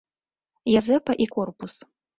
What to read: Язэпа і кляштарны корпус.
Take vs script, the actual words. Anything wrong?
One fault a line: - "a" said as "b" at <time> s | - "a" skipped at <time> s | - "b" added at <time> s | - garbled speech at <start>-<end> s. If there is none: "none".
- "кляштарны" skipped at 1.3 s